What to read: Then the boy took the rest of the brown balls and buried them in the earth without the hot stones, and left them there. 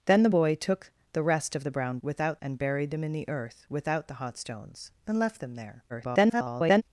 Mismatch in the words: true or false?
true